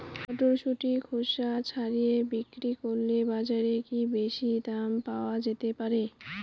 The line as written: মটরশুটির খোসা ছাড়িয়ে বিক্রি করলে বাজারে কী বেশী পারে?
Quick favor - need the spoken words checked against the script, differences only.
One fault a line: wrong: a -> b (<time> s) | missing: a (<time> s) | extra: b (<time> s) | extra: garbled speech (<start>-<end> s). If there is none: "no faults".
extra: দাম পাওয়া যেতে (4.7 s)